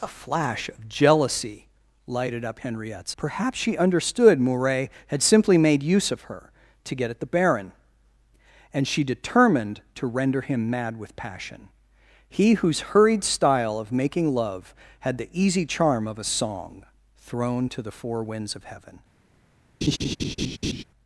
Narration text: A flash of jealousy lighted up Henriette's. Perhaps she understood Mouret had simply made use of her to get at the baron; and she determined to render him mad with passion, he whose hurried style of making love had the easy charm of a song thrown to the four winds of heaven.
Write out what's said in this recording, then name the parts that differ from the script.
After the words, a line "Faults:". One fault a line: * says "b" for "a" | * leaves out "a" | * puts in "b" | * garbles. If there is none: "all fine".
A flash of jealousy lighted up Henriette's. Perhaps she understood Mouret had simply made use of her to get at the baron; and she determined to render him mad with passion, he whose hurried style of making love had the easy charm of a song thrown to the four winds of heaven.
Faults:
all fine